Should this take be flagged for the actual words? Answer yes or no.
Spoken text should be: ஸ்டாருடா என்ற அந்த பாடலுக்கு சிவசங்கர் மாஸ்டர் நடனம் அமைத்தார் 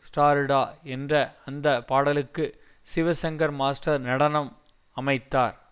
no